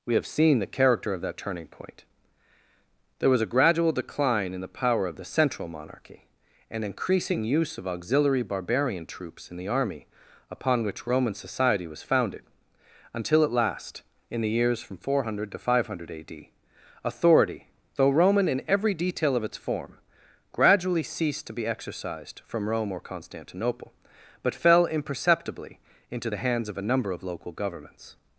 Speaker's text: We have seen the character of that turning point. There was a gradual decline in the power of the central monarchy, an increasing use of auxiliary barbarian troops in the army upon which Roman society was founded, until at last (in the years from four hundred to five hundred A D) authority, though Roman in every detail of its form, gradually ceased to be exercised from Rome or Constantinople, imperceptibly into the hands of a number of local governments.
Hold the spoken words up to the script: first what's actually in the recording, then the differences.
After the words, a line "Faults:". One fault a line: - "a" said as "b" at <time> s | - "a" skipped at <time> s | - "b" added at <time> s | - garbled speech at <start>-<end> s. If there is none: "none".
We have seen the character of that turning point. There was a gradual decline in the power of the central monarchy, an increasing use of auxiliary barbarian troops in the army upon which Roman society was founded, until at last (in the years from four hundred to five hundred A D) authority, though Roman in every detail of its form, gradually ceased to be exercised from Rome or Constantinople, but fell imperceptibly into the hands of a number of local governments.
Faults:
- "but fell" added at 24.4 s